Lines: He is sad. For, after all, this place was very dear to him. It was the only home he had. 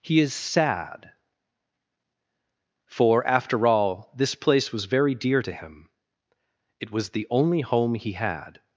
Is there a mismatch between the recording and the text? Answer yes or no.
no